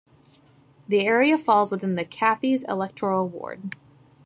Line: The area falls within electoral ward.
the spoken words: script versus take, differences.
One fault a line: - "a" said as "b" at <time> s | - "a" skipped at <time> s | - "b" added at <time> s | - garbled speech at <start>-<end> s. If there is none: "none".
- "the Cathays" added at 1.9 s